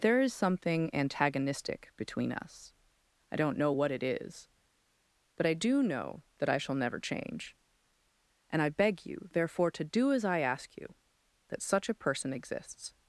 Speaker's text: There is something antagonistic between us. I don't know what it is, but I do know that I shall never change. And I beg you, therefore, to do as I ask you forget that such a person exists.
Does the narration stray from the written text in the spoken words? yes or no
yes